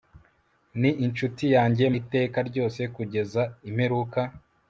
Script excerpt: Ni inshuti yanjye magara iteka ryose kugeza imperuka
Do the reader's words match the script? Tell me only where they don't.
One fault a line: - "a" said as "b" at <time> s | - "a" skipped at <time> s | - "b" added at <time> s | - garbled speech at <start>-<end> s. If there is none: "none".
- "magara" skipped at 1.8 s